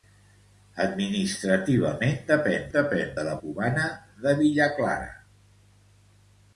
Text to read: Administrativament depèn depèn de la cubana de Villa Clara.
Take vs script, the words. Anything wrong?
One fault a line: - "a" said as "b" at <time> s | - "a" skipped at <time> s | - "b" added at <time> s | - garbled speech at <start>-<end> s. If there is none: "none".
none